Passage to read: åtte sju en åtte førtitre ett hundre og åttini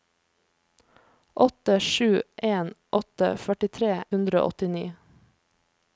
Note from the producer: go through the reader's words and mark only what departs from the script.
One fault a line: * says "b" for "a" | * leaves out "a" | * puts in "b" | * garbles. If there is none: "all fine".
* leaves out "ett"